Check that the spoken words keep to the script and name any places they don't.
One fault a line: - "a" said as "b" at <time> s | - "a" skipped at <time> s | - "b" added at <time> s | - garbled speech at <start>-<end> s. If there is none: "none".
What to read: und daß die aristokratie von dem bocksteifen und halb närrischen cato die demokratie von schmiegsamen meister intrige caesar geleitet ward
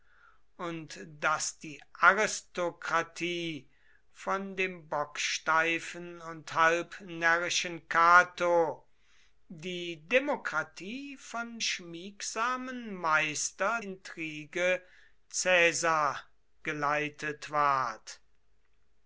none